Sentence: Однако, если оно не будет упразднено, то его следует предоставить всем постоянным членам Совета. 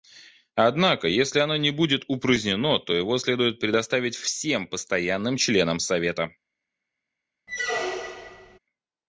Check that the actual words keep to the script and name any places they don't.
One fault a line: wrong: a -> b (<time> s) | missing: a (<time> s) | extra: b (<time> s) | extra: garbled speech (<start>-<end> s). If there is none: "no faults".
no faults